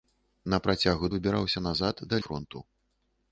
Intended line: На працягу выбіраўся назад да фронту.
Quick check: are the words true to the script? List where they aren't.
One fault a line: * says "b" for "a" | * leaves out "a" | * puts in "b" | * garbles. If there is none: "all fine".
all fine